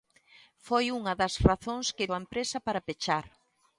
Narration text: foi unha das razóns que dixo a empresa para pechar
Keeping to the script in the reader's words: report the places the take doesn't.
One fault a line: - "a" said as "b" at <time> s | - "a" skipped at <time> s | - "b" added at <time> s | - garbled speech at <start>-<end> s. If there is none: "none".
- "dixo" skipped at 2.1 s